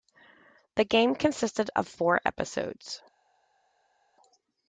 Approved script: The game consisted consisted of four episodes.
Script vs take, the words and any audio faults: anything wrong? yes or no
yes